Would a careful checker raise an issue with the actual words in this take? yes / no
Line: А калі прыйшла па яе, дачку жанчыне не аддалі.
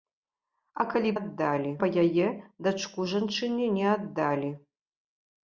yes